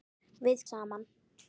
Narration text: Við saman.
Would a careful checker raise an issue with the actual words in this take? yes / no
no